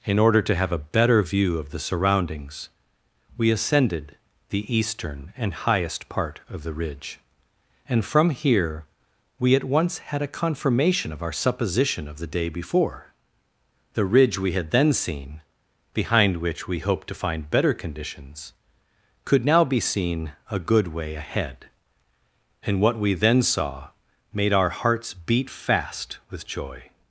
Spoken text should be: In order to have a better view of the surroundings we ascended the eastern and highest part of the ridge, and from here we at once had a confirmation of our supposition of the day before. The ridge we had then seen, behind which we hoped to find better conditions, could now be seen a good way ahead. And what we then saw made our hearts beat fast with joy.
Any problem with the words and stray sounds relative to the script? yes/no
no